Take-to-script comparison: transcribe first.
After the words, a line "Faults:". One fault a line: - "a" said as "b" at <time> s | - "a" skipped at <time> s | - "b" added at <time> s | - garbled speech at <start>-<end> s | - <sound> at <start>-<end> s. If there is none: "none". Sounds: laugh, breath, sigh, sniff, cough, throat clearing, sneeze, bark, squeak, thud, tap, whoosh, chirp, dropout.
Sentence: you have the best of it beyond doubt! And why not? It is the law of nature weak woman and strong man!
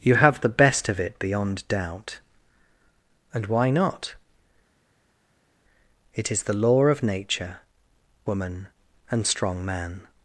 you have the best of it beyond doubt! And why not? It is the law of nature woman and strong man!
Faults:
- "weak" skipped at 7.6 s